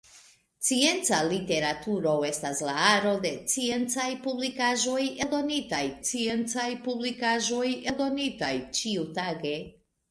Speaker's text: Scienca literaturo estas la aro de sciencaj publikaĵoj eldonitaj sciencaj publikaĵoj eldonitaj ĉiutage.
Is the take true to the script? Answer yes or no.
yes